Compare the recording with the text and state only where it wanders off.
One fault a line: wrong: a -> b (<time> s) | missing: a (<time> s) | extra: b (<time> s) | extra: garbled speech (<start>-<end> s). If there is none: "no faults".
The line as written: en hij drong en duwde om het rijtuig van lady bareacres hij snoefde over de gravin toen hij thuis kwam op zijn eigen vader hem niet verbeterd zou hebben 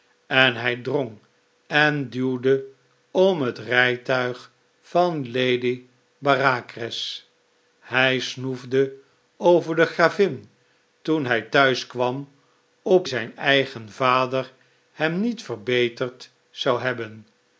no faults